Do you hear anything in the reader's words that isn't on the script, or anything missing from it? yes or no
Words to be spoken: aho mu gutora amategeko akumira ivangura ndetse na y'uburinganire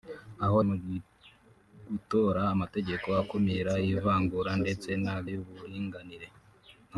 no